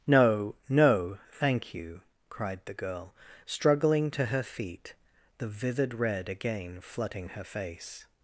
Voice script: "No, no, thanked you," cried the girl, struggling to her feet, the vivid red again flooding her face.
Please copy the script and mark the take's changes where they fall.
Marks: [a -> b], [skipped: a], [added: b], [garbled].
"No, no, [thanked -> thank] you," cried the girl, struggling to her feet, the vivid red again flooding her face.